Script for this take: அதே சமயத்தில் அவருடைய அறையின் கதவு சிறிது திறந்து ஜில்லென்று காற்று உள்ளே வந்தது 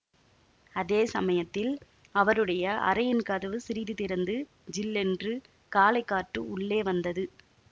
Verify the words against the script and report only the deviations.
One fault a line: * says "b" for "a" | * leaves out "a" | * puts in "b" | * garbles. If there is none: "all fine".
* puts in "காலை"